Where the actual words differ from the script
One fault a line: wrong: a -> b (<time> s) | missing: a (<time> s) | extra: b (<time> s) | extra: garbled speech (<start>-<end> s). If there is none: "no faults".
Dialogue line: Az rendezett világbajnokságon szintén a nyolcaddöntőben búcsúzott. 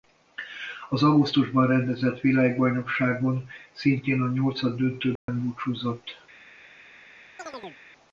extra: augusztusban (1.0 s)